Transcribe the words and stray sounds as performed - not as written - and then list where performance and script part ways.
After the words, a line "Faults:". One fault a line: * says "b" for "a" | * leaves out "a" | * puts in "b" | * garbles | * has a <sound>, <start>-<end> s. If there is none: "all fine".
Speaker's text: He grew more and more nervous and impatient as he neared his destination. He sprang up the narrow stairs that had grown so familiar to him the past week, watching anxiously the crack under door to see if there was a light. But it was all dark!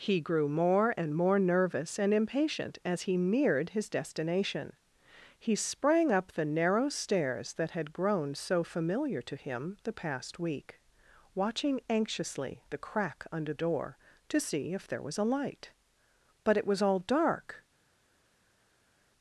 He grew more and more nervous and impatient as he neared his destination. He sprang up the narrow stairs that had grown so familiar to him the past week, watching anxiously the crack under door to see if there was a light. But it was all dark!
Faults:
all fine